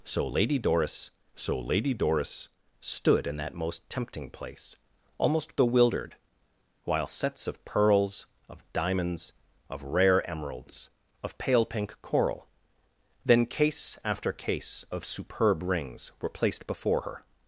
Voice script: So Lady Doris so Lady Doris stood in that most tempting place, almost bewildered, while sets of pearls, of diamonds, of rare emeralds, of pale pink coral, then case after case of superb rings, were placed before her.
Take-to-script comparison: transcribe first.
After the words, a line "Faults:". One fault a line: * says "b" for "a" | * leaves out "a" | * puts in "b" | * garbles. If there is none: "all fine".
So Lady Doris so Lady Doris stood in that most tempting place, almost bewildered, while sets of pearls, of diamonds, of rare emeralds, of pale pink coral, then case after case of superb rings, were placed before her.
Faults:
all fine